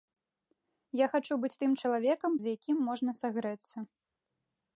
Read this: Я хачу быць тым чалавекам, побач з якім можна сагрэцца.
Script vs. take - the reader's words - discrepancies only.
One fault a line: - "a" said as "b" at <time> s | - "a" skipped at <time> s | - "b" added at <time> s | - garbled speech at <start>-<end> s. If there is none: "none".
- "побач" skipped at 2.3 s